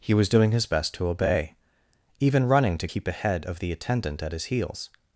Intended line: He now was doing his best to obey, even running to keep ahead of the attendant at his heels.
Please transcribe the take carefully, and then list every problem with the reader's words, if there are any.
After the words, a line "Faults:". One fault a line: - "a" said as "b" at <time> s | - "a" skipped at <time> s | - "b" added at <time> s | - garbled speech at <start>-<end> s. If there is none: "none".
He was doing his best to obey, even running to keep ahead of the attendant at his heels.
Faults:
- "now" skipped at 0.1 s